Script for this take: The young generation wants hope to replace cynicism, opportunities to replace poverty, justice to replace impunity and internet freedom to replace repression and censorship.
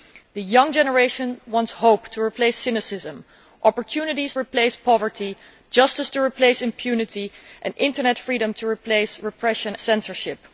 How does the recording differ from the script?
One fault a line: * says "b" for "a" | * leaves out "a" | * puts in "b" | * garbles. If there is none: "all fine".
* leaves out "to"
* leaves out "and"